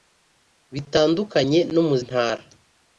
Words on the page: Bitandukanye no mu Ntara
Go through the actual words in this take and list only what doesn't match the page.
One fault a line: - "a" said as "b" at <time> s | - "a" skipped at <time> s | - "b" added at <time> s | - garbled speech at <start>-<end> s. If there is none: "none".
none